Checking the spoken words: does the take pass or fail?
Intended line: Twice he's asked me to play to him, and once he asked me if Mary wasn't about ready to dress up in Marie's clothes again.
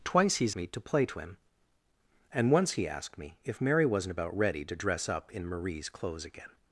fail